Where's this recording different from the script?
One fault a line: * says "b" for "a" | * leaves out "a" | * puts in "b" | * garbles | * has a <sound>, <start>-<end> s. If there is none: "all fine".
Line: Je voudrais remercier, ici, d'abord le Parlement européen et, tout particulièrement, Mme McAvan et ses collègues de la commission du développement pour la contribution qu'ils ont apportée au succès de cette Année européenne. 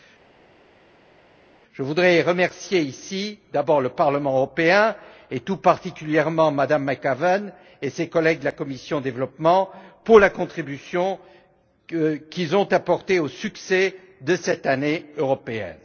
all fine